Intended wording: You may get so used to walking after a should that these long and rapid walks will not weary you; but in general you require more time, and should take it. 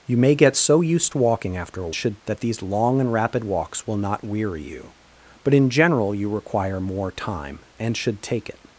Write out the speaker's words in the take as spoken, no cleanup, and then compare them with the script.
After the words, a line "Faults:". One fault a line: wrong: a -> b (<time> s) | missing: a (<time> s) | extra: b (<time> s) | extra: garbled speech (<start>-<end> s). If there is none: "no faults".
You may get so used to walking after a should that these long and rapid walks will not weary you; but in general you require more time, and should take it.
Faults:
no faults